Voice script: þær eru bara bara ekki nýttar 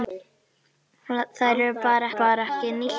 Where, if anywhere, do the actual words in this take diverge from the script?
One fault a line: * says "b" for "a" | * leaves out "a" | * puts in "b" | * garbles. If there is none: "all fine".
all fine